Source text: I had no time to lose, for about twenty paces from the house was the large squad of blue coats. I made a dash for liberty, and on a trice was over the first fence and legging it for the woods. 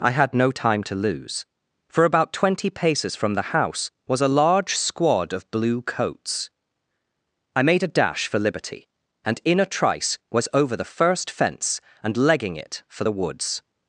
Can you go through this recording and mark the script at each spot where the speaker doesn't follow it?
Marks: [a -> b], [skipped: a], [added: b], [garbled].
I had no time to lose, for about twenty paces from the house was [the -> a] large squad of blue coats. I made a dash for liberty, and [on -> in] a trice was over the first fence and legging it for the woods.